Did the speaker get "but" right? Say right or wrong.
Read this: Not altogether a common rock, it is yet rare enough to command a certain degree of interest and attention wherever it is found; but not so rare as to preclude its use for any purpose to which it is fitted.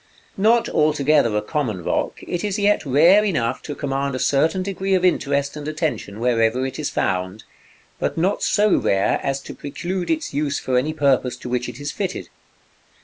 right